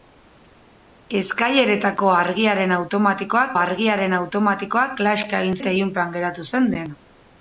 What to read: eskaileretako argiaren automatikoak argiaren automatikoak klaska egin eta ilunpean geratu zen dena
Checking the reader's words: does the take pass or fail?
pass